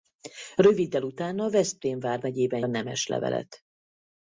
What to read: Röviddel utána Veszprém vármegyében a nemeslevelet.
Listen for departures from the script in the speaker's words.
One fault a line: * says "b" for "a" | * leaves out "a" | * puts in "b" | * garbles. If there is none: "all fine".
all fine